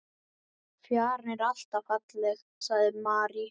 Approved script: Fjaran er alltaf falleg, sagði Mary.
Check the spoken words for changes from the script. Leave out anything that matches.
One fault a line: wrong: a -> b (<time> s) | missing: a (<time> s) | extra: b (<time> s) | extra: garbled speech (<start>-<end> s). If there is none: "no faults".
no faults